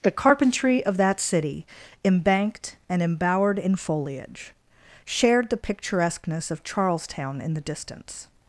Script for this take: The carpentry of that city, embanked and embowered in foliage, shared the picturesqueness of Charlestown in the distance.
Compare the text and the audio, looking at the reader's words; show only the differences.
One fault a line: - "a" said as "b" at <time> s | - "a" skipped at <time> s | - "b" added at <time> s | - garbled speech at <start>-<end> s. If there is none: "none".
none